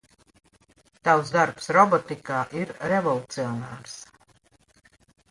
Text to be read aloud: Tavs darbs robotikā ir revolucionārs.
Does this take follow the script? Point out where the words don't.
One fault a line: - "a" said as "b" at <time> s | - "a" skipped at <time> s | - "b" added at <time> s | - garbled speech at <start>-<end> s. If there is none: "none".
none